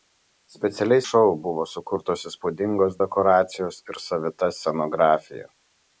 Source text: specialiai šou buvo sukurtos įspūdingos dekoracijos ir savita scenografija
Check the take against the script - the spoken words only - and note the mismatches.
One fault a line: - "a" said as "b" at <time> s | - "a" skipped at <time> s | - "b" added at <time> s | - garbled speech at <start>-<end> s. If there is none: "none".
none